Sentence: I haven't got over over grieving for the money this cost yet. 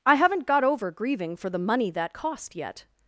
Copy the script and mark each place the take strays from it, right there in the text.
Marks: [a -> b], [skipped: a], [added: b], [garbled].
I haven't got over [skipped: over] grieving for the money [this -> that] cost yet.